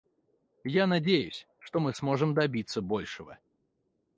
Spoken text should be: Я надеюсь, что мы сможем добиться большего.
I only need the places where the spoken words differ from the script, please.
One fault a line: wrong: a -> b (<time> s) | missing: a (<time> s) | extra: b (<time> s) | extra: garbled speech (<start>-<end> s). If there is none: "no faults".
no faults